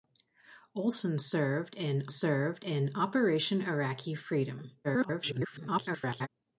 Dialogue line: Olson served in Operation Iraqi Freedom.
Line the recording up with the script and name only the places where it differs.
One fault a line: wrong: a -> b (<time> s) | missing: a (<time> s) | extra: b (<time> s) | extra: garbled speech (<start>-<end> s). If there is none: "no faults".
extra: served in (2.1 s)
extra: garbled speech (4.8-6.3 s)